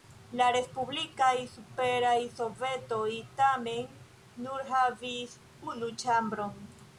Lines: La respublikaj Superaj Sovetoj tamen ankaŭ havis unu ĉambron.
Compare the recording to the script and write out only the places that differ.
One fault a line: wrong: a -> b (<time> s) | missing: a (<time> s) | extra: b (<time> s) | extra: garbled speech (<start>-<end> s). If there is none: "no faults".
wrong: ankaŭ -> nur (4.5 s)